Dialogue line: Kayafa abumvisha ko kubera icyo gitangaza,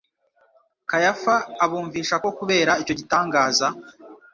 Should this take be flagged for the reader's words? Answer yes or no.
no